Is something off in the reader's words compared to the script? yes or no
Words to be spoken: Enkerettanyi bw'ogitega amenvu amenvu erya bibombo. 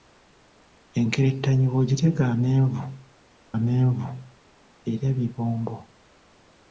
no